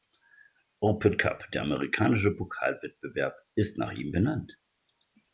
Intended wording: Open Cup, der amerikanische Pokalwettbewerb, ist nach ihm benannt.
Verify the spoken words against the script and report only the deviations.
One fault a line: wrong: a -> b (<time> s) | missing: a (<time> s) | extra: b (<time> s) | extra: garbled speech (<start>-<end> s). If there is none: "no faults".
no faults